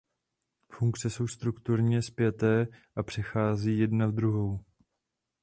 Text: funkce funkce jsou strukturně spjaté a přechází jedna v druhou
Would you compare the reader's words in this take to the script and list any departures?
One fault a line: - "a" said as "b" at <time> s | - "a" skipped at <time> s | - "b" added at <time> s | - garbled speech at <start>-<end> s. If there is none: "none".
- "funkce" skipped at 1.1 s